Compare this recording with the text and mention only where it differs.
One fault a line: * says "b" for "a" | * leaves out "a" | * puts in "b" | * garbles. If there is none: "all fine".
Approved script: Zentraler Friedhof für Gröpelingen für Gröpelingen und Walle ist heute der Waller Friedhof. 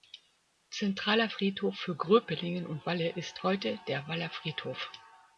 * leaves out "für Gröpelingen"